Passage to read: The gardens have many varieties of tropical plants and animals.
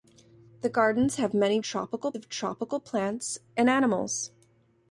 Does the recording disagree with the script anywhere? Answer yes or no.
yes